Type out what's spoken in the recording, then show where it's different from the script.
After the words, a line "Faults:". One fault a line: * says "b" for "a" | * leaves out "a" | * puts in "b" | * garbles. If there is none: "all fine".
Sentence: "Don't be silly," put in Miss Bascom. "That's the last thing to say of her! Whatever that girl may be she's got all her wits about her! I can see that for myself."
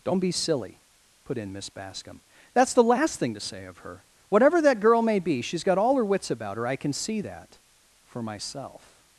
"Don't be silly," put in Miss Bascom. "That's the last thing to say of her! Whatever that girl may be she's got all her wits about her! I can see that for myself."
Faults:
all fine